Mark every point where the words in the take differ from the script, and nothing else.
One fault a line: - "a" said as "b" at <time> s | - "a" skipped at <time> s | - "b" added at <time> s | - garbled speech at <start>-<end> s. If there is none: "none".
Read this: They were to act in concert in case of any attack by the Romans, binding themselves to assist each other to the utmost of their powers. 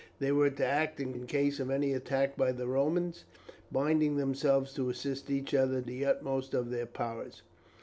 - "concert" skipped at 1.1 s
- "to" skipped at 5.8 s